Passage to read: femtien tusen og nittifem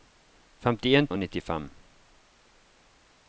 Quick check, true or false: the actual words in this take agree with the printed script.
false